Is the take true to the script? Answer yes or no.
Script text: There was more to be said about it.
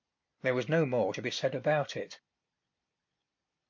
no